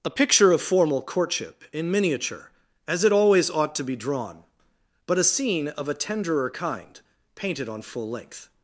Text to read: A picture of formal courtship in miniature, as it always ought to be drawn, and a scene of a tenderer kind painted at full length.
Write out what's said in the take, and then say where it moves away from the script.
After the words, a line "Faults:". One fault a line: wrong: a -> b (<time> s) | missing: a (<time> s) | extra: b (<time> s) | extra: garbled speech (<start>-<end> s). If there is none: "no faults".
A picture of formal courtship in miniature, as it always ought to be drawn, but a scene of a tenderer kind painted on full length.
Faults:
wrong: and -> but (5.0 s)
wrong: at -> on (7.7 s)